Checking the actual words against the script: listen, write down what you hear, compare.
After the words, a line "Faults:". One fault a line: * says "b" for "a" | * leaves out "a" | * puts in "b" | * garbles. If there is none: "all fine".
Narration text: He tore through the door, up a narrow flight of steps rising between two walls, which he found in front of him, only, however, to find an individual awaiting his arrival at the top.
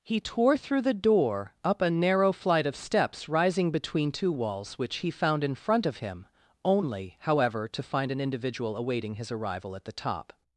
He tore through the door, up a narrow flight of steps rising between two walls, which he found in front of him, only, however, to find an individual awaiting his arrival at the top.
Faults:
all fine